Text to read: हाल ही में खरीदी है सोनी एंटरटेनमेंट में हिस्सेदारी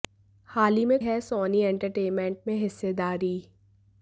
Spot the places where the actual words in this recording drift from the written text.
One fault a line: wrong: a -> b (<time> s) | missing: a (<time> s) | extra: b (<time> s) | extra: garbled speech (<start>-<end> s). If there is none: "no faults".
missing: खरीदी (1.0 s)